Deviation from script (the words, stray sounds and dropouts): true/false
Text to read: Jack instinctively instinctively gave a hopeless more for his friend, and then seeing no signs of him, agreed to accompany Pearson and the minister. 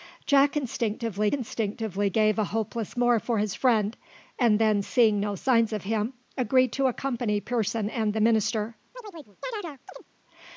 true